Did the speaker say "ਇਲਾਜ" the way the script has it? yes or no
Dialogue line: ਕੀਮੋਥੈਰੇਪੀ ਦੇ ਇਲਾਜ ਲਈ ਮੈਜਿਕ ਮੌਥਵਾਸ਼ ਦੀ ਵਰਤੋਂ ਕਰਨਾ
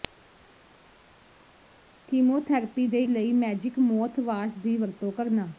no